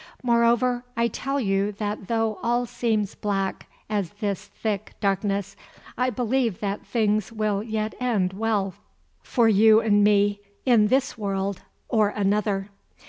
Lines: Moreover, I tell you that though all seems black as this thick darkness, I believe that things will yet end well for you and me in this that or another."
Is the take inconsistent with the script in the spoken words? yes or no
yes